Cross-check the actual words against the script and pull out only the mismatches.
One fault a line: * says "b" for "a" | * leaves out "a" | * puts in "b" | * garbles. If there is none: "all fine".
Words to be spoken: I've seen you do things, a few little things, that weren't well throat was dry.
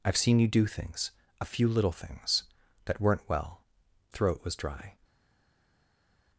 all fine